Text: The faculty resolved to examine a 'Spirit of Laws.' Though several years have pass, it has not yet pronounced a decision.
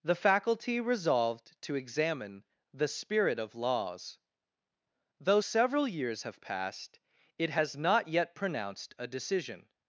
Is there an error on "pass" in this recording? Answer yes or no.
yes